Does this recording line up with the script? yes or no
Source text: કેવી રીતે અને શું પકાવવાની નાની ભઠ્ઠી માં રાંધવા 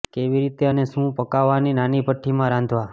yes